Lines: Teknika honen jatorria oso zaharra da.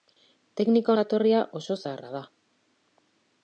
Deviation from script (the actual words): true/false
true